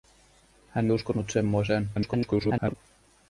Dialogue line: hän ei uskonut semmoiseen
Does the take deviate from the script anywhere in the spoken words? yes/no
yes